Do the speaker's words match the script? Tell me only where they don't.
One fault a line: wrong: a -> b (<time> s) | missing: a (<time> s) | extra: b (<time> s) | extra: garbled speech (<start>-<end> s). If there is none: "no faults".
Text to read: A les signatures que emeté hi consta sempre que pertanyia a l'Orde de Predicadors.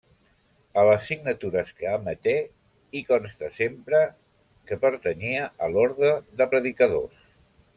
no faults